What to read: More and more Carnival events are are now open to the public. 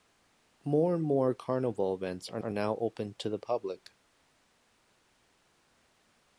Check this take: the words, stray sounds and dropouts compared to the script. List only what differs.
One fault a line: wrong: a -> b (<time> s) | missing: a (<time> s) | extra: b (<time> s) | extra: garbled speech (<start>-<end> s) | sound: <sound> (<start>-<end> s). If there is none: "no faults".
no faults